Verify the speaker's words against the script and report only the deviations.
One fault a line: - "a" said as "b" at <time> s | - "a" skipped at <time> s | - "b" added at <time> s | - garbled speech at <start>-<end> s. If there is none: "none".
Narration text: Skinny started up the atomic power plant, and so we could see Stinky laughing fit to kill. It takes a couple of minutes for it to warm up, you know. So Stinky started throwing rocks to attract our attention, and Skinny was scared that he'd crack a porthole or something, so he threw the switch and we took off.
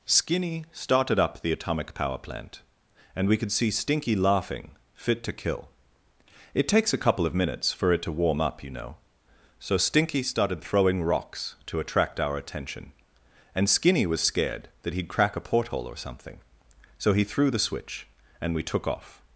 - "so" skipped at 3.3 s